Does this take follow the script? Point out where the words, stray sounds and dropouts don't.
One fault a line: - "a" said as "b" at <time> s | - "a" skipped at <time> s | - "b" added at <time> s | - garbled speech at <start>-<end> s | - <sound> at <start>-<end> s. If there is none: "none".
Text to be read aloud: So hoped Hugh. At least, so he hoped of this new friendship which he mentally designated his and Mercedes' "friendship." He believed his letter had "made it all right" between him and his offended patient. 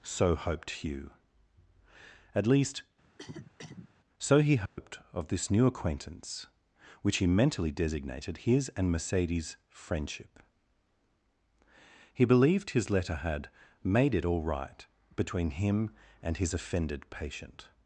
- cough at 3.0-3.9 s
- dropout at 4.7-4.8 s
- "friendship" said as "acquaintance" at 5.7 s